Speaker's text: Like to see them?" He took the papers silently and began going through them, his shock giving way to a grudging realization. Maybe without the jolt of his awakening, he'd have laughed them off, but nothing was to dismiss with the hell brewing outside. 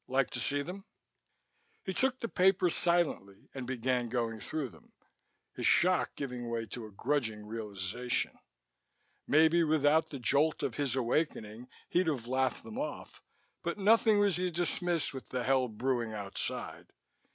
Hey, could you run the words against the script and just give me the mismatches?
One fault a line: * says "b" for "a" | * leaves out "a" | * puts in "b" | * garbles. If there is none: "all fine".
all fine